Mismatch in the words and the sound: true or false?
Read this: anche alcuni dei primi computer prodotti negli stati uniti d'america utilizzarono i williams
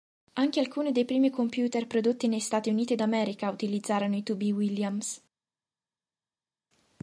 true